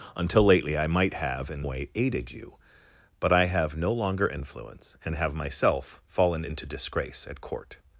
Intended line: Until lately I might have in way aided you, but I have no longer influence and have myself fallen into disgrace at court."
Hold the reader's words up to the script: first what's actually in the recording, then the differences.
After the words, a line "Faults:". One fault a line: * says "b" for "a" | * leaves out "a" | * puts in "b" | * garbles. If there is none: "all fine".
Until lately I might have in way aided you, but I have no longer influence and have myself fallen into disgrace at court."
Faults:
all fine